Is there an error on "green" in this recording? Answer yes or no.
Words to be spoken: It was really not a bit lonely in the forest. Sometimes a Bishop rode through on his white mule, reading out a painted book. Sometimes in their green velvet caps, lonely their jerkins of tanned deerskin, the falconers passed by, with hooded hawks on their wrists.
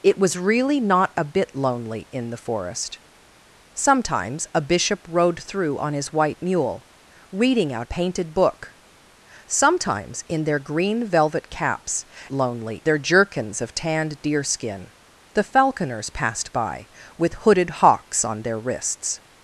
no